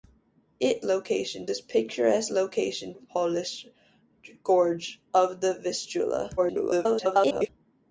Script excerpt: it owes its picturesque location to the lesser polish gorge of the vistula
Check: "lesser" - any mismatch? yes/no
yes